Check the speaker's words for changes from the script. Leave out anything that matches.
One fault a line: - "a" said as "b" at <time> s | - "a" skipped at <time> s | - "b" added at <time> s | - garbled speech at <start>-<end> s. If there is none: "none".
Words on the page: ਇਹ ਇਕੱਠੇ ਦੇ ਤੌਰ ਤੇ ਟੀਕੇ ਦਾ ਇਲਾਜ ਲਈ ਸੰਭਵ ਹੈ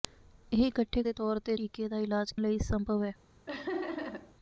none